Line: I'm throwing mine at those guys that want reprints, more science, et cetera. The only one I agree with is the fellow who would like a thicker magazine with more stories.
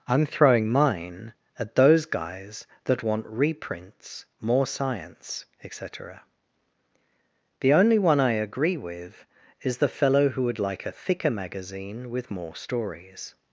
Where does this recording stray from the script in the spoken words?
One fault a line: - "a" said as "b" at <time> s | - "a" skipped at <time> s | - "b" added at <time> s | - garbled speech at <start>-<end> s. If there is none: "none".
none